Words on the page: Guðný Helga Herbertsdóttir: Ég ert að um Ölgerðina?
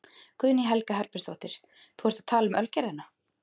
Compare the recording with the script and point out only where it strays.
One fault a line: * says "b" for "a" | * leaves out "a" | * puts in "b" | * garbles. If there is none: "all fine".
* says "Þú" for "Ég"
* puts in "tala"